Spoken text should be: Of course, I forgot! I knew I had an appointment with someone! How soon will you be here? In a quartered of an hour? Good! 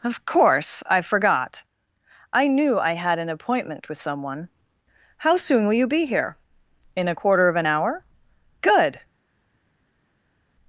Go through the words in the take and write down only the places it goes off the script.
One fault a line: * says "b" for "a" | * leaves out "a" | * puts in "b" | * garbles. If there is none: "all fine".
* says "quarter" for "quartered"